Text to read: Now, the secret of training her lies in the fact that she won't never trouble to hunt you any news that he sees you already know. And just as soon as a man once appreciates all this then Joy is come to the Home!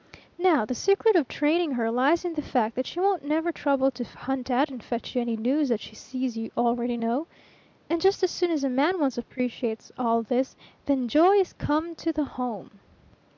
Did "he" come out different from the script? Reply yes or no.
yes